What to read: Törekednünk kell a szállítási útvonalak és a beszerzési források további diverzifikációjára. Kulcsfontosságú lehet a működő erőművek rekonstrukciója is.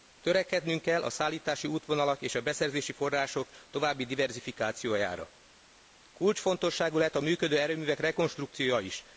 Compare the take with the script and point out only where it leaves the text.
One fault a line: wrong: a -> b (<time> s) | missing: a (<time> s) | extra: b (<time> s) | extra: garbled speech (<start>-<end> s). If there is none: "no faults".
no faults